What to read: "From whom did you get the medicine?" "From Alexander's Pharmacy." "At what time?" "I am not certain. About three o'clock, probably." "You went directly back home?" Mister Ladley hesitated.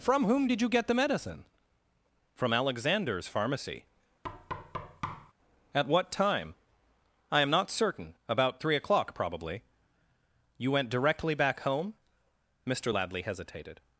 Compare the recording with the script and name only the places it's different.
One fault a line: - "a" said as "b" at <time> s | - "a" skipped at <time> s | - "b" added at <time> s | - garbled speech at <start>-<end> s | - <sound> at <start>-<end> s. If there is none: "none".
- thud at 4.2-5.3 s